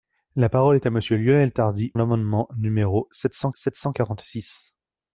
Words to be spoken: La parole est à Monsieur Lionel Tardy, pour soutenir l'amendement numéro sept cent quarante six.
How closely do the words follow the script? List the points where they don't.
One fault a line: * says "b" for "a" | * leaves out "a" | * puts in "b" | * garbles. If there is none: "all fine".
* says "l'amendement numéro sept cent" for "pour soutenir l'amendement numéro"